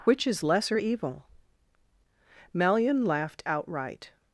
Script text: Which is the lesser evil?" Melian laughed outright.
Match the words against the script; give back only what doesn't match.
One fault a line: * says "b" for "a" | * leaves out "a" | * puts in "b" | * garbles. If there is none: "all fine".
* leaves out "the"